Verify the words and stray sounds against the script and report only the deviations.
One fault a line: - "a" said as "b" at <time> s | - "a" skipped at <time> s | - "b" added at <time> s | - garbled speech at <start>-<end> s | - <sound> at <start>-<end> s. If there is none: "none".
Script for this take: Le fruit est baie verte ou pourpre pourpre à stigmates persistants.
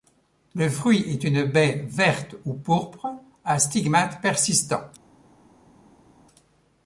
- "une" added at 1.2 s
- "pourpre" skipped at 3.1 s